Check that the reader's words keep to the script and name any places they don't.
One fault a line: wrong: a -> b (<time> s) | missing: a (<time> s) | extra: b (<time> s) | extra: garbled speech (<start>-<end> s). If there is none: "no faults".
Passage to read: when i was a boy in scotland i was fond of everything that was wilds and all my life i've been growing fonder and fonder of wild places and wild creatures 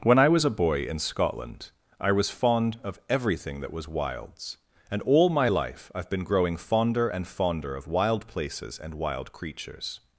no faults